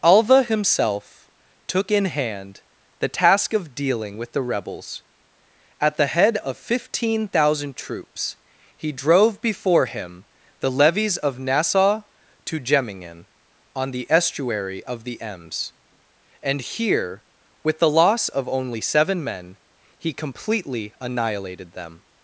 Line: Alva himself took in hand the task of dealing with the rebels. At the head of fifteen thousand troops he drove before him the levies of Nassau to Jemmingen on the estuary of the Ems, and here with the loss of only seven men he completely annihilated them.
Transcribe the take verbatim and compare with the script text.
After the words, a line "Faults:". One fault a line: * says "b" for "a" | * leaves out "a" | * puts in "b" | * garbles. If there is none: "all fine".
Alva himself took in hand the task of dealing with the rebels. At the head of fifteen thousand troops he drove before him the levies of Nassau to Jemmingen on the estuary of the Ems, and here with the loss of only seven men he completely annihilated them.
Faults:
all fine